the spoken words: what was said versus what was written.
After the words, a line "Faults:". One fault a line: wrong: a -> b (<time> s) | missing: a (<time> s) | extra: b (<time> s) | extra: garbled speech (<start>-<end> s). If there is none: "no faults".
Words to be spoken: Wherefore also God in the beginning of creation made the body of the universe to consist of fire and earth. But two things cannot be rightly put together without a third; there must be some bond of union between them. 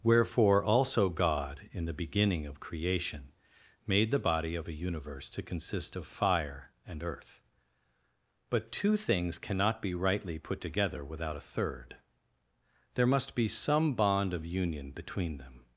Wherefore also God in the beginning of creation made the body of a universe to consist of fire and earth. But two things cannot be rightly put together without a third; there must be some bond of union between them.
Faults:
wrong: the -> a (4.7 s)